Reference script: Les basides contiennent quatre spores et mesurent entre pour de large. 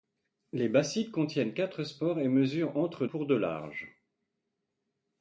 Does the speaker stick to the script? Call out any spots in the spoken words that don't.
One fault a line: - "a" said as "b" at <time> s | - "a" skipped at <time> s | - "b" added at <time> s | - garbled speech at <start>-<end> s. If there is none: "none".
none